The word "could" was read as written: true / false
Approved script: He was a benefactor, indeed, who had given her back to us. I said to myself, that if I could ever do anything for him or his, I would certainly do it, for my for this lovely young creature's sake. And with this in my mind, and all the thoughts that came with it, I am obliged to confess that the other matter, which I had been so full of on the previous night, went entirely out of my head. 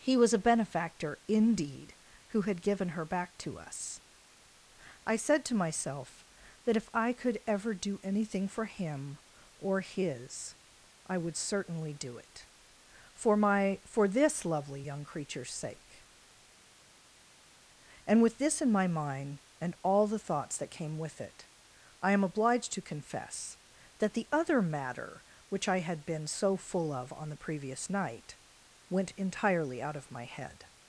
true